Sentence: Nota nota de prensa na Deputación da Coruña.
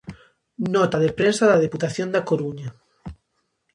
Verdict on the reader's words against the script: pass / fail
fail